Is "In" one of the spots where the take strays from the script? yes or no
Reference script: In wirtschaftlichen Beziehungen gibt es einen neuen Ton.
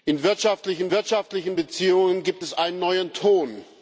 no